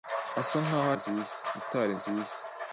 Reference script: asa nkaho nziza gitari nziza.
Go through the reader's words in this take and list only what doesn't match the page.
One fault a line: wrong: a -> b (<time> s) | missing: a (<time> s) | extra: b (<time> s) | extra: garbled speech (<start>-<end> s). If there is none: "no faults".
no faults